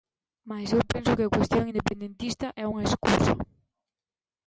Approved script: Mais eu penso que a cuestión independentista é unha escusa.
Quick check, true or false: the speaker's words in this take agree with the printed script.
true